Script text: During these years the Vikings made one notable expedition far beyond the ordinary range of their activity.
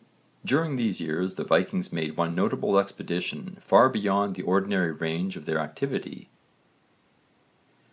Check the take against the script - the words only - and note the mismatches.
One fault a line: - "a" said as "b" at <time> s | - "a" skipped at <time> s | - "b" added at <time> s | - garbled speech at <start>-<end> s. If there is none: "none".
none